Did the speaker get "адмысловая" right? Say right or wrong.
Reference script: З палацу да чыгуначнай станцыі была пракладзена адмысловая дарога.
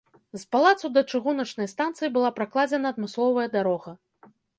right